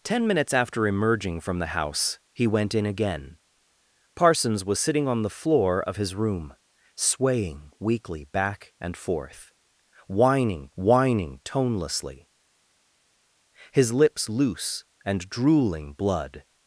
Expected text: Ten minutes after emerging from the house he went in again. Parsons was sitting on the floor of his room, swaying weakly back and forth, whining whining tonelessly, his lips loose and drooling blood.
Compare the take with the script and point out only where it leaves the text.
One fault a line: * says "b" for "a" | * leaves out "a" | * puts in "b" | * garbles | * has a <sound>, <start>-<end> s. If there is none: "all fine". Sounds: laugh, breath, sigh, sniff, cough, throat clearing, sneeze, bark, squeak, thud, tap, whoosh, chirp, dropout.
all fine